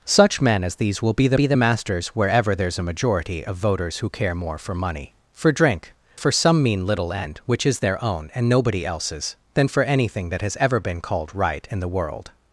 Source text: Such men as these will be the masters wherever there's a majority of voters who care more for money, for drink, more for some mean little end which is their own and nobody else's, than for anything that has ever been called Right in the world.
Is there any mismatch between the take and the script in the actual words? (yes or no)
yes